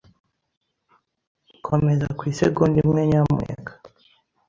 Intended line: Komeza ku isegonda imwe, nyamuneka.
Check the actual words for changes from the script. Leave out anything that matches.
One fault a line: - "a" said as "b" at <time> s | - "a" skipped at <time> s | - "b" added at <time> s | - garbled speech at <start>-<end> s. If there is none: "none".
none